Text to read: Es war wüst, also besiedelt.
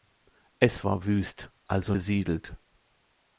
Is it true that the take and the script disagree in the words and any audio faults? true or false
false